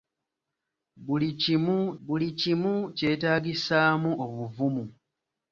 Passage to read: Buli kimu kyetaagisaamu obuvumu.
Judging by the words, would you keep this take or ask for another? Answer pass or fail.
fail